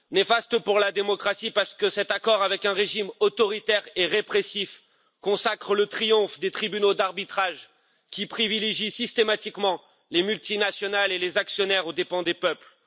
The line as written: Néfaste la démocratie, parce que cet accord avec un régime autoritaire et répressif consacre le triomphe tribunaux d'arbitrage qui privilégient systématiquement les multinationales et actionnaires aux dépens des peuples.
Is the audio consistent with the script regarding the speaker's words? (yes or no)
no